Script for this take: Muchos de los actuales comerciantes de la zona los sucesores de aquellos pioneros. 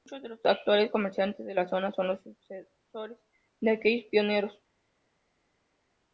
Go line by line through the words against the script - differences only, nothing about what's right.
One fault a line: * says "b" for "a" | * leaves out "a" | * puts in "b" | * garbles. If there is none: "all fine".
* puts in "son"